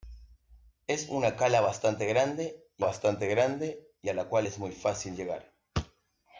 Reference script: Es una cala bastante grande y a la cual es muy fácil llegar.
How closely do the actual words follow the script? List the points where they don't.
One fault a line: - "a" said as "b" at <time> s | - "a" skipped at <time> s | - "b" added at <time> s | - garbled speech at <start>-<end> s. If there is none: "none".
- "bastante grande y" added at 2.8 s